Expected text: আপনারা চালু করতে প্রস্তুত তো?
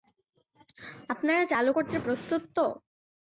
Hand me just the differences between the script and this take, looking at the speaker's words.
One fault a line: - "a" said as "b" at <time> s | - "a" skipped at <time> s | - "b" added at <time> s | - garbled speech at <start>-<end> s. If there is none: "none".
none